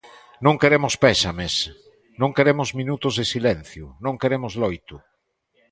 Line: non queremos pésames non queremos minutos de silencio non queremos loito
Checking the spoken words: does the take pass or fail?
pass